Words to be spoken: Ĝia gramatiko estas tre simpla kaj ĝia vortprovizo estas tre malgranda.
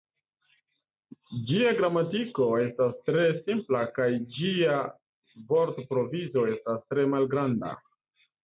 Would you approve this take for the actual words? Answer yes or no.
yes